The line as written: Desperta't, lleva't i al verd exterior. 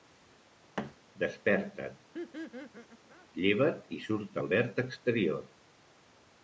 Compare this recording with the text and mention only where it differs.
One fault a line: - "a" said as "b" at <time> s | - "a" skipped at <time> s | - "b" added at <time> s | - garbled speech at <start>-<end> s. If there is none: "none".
- "surt" added at 4.1 s